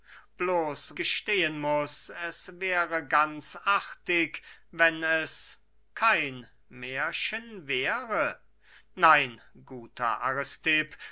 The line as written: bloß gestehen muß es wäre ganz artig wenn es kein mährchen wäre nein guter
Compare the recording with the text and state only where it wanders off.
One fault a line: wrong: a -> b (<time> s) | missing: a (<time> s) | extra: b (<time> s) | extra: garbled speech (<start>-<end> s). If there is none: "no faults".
no faults